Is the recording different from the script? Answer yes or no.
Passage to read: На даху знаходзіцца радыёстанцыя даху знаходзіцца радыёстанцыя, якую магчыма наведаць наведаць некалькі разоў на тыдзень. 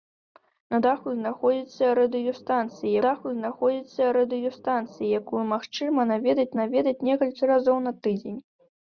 no